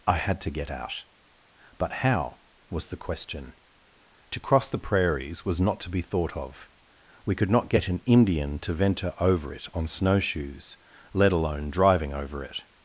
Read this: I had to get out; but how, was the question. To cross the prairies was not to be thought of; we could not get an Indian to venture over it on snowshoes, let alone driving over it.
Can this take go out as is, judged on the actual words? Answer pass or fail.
pass